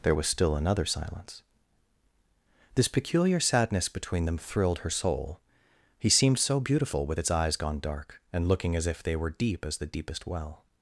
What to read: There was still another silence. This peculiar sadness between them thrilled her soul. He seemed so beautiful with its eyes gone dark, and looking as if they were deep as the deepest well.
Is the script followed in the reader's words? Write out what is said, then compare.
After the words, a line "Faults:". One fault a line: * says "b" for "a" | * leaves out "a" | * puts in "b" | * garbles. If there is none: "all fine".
There was still another silence. This peculiar sadness between them thrilled her soul. He seemed so beautiful with its eyes gone dark, and looking as if they were deep as the deepest well.
Faults:
all fine